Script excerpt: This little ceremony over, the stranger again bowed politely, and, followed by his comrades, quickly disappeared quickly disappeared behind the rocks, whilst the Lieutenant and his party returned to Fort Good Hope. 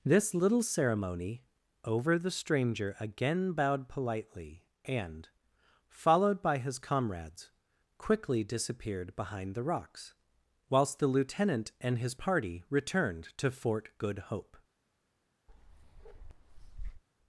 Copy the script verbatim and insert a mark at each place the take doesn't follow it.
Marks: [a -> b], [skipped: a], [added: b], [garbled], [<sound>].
This little ceremony over, the stranger again bowed politely, and, followed by his comrades, quickly disappeared [skipped: quickly disappeared] behind the rocks, whilst the Lieutenant and his party returned to Fort Good Hope. [bark]